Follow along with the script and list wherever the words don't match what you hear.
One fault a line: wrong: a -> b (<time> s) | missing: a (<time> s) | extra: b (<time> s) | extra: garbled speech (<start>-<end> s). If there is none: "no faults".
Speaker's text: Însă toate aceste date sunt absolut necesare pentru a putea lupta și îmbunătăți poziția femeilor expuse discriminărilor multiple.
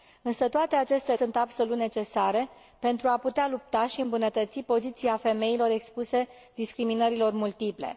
missing: date (1.1 s)